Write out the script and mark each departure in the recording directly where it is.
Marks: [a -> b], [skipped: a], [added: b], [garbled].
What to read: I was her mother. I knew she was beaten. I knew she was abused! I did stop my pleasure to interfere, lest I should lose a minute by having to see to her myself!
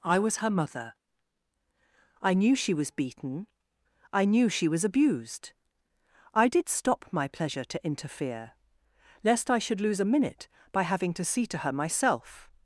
I was her mother. I knew she was beaten. I knew she was abused! I did stop my pleasure to interfere, lest I should lose a minute by having to see to her myself!